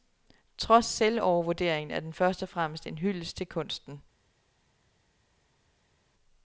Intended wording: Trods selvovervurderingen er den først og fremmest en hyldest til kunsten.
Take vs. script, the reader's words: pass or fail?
pass